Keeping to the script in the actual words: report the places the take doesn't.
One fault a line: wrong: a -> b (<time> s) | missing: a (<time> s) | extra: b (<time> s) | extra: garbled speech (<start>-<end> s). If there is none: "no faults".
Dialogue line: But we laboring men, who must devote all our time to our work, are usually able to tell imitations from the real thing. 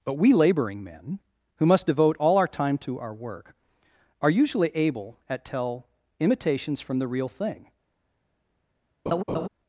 wrong: to -> at (5.3 s)